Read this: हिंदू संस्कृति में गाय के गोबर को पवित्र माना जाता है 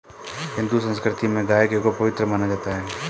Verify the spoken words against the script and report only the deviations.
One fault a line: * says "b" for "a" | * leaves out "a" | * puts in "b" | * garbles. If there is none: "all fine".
* leaves out "गोबर"